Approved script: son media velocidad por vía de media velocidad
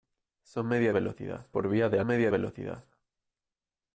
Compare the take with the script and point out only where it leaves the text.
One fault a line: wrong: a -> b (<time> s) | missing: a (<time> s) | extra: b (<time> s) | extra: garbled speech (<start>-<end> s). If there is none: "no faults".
no faults